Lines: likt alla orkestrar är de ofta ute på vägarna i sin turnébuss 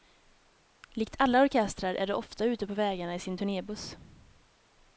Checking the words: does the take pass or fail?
pass